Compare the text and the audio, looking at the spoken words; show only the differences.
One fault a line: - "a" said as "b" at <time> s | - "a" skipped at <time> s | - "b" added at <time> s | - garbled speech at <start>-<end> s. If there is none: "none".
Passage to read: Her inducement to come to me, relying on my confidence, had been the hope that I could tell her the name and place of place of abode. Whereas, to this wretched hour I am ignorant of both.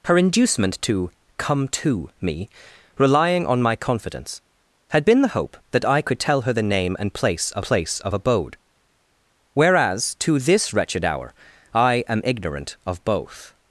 none